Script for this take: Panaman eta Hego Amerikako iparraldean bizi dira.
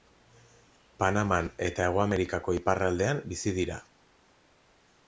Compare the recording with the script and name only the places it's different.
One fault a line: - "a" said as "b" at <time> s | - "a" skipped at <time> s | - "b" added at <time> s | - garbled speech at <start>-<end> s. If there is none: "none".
none